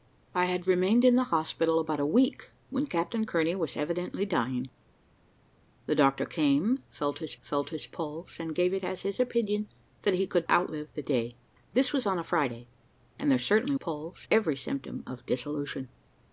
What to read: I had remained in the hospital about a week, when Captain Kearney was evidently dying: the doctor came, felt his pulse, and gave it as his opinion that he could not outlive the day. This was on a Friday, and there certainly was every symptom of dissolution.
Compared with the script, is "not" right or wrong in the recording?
wrong